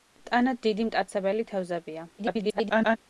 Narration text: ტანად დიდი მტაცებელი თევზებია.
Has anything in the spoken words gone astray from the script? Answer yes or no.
yes